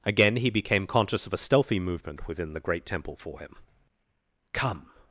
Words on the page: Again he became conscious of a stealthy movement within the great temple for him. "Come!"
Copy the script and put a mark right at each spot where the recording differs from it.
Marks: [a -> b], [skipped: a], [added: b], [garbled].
Again he became conscious of a stealthy movement within the great temple for him. "Come!"